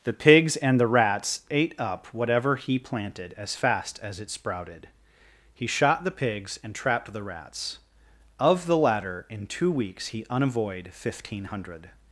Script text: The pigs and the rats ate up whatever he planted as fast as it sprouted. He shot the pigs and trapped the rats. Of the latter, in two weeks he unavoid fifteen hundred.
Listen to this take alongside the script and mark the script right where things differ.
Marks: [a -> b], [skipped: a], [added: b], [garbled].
The pigs and the rats ate up whatever he planted as fast as it sprouted. He shot the pigs and trapped the rats. Of the latter, in two weeks he unavoid fifteen hundred.